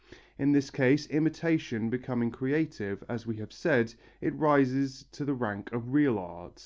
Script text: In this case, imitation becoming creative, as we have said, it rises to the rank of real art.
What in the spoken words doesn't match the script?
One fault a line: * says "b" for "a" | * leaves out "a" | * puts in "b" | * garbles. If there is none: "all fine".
all fine